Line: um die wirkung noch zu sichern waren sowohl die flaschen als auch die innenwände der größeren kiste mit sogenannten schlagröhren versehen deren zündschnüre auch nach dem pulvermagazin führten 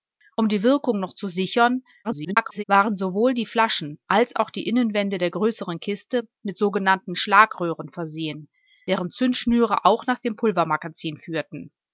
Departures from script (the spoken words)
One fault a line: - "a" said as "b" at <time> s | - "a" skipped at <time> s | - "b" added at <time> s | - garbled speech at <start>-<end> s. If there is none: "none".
- garbled speech at 2.0-2.6 s